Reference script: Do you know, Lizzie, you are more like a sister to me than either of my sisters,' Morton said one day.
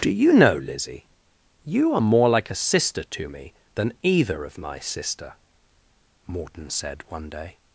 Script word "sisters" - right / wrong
wrong